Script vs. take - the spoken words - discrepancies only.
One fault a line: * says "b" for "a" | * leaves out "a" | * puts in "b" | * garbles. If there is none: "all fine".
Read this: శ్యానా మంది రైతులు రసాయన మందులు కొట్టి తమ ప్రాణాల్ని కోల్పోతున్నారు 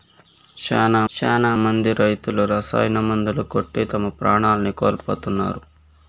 * puts in "శ్యానా"